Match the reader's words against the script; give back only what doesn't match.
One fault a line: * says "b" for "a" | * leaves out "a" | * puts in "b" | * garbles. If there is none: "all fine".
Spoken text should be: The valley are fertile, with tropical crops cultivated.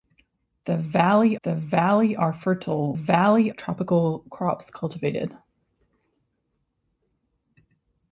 * puts in "the valley"
* says "valley" for "with"